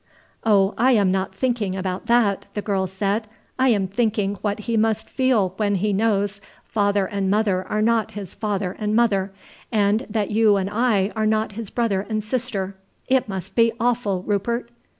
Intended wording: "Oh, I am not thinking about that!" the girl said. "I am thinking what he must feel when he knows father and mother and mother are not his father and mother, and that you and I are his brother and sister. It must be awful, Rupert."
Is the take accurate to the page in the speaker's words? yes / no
no